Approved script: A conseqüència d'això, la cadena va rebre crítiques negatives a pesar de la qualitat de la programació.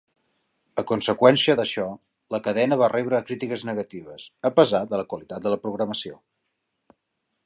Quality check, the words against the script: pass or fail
pass